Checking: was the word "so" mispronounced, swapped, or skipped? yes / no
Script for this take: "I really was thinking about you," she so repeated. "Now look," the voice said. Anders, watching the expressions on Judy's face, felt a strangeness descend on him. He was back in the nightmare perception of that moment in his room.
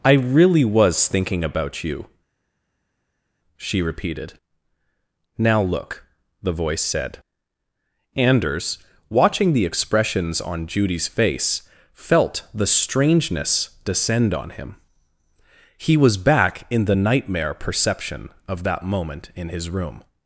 yes